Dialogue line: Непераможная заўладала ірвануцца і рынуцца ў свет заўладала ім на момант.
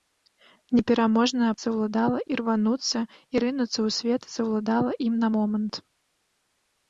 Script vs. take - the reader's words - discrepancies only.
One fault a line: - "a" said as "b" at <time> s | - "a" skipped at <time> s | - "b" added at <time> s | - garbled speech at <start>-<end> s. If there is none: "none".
none